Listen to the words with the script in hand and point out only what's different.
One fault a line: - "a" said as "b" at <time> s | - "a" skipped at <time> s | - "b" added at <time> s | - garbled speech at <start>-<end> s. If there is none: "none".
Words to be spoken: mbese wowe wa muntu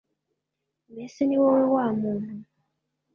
- "ni" added at 1.3 s